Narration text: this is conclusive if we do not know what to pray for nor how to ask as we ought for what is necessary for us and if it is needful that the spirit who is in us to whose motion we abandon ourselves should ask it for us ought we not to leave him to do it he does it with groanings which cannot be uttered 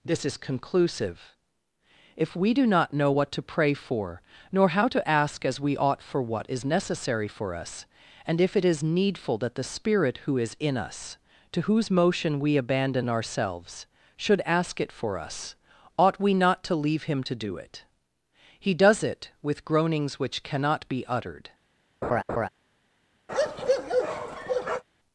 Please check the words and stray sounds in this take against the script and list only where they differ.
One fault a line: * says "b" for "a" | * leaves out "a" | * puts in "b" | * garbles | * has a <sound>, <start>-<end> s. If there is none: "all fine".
* has a laugh, 22.0-22.5 s
* has a bark, 23.3-24.8 s